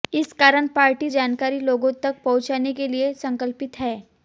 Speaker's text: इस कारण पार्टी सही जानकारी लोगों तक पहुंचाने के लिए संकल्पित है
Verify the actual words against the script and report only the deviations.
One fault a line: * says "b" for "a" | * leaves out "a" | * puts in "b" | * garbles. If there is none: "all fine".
* leaves out "सही"